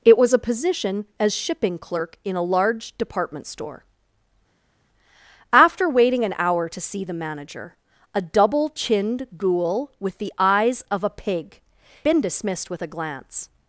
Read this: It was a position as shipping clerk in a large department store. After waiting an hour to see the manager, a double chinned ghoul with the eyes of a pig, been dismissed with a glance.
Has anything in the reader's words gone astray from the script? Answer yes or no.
no